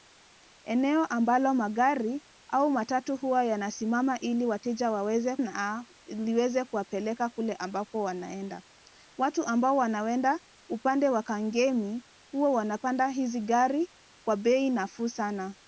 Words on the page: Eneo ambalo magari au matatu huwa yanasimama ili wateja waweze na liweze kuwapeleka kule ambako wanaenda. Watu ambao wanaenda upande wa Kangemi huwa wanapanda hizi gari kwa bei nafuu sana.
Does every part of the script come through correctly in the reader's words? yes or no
yes